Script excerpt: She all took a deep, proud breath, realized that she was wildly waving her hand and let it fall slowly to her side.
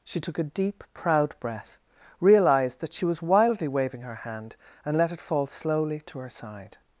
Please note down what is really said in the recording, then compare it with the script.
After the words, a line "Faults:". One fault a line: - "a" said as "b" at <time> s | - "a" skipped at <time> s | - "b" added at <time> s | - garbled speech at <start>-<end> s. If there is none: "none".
She took a deep, proud breath, realized that she was wildly waving her hand and let it fall slowly to her side.
Faults:
- "all" skipped at 0.2 s